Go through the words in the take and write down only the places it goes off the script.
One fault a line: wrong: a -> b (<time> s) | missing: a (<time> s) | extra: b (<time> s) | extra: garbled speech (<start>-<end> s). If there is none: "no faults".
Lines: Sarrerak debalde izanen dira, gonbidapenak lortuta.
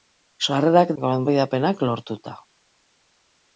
missing: debalde izanen dira (0.9 s)